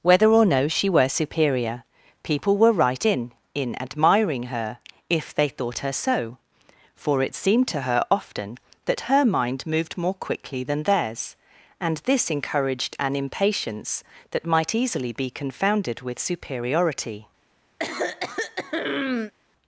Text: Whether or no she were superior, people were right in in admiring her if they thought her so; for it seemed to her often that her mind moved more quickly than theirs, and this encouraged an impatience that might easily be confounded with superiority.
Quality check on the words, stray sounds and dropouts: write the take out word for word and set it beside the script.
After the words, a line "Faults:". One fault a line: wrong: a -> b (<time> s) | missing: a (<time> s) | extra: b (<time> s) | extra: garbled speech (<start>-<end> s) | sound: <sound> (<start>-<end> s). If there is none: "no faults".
Whether or no she were superior, people were right in in admiring her if they thought her so; for it seemed to her often that her mind moved more quickly than theirs, and this encouraged an impatience that might easily be confounded with superiority.
Faults:
sound: throat clearing (17.8-19.3 s)